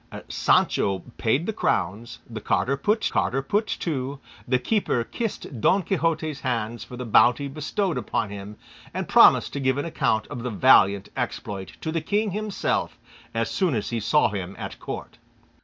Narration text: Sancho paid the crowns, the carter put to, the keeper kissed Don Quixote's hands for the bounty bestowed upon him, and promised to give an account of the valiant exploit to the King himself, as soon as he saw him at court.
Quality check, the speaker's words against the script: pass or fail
fail